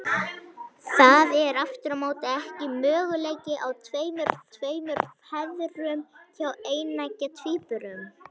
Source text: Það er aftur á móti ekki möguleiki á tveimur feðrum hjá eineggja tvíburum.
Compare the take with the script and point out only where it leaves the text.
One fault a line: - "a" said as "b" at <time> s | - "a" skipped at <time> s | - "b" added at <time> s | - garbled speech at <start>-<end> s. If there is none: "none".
- "tveimur" added at 4.6 s